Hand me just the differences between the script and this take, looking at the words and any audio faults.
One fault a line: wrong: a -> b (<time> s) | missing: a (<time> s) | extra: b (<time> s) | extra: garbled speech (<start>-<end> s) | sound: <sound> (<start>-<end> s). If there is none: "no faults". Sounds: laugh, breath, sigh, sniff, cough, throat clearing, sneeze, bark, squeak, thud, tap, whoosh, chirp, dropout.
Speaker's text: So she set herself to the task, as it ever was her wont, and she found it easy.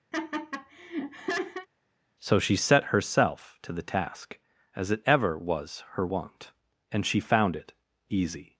sound: laugh (0.1-1.7 s)